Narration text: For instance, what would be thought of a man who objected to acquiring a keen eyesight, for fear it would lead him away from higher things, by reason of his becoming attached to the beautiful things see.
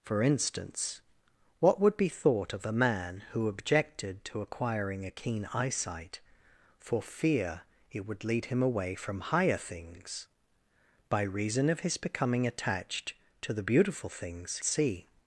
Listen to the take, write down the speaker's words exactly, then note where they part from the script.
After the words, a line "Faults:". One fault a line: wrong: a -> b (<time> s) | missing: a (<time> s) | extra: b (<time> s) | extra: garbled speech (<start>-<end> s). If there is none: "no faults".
For instance, what would be thought of a man who objected to acquiring a keen eyesight, for fear it would lead him away from higher things, by reason of his becoming attached to the beautiful things see.
Faults:
no faults